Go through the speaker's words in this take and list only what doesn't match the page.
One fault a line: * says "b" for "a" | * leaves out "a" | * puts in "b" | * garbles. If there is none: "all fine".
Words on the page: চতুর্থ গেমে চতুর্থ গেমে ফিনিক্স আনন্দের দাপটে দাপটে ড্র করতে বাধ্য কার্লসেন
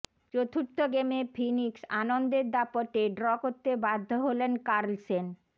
* leaves out "চতুর্থ গেমে"
* leaves out "দাপটে"
* puts in "হলেন"